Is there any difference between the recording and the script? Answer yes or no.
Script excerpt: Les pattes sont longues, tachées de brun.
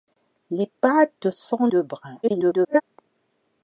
yes